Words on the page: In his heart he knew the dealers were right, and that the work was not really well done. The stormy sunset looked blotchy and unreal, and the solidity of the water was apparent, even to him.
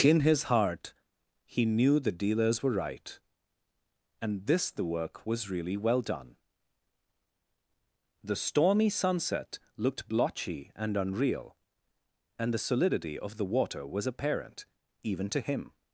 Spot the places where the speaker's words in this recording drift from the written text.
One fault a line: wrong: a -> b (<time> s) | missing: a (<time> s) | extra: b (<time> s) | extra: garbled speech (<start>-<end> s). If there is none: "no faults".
wrong: that -> this (4.5 s)
missing: not (5.5 s)